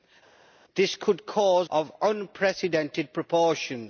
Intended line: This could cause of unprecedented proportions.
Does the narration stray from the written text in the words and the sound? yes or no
no